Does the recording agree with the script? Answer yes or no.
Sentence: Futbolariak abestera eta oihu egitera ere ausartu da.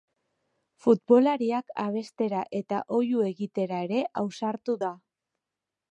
yes